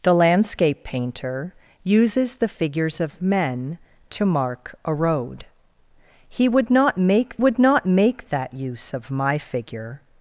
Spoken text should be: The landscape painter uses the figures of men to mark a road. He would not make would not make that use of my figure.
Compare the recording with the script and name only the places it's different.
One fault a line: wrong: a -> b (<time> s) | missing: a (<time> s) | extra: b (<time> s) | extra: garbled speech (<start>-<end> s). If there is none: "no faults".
no faults